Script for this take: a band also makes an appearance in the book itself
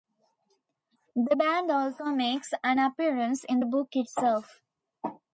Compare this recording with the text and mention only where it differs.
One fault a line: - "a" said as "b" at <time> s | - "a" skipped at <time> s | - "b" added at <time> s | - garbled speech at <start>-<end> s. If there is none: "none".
- "a" said as "the" at 1.1 s